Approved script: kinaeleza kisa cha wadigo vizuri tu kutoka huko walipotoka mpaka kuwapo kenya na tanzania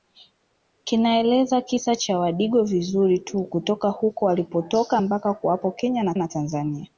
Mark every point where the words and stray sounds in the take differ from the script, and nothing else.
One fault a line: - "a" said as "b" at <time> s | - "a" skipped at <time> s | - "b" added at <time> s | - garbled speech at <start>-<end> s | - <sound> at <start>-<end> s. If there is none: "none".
- "na" added at 6.2 s